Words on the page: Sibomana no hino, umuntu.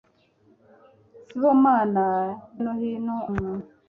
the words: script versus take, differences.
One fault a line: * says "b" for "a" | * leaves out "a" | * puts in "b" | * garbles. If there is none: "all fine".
all fine